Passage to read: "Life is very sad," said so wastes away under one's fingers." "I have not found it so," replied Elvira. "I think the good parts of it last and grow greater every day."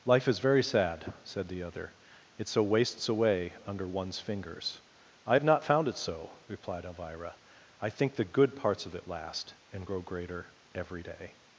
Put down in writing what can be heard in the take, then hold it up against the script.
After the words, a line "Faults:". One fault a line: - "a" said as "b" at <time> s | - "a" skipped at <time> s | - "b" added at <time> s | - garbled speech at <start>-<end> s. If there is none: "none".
"Life is very sad," said the other; "it so wastes away under one's fingers." "I have not found it so," replied Elvira. "I think the good parts of it last and grow greater every day."
Faults:
- "the other it" added at 1.5 s